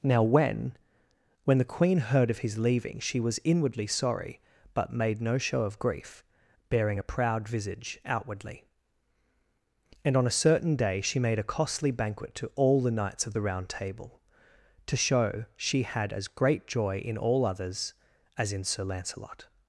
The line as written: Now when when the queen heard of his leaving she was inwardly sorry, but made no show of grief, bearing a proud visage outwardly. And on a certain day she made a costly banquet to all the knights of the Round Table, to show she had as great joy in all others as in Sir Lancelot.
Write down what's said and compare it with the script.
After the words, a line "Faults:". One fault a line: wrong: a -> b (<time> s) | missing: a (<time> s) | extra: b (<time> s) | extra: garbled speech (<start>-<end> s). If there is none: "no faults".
Now when when the queen heard of his leaving she was inwardly sorry, but made no show of grief, bearing a proud visage outwardly. And on a certain day she made a costly banquet to all the knights of the Round Table, to show she had as great joy in all others as in Sir Lancelot.
Faults:
no faults